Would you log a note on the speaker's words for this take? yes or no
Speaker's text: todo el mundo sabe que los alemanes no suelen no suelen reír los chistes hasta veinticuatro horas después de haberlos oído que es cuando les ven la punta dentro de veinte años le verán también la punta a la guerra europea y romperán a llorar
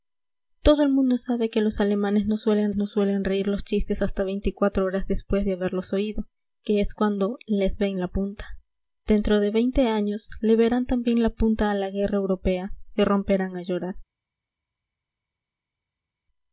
no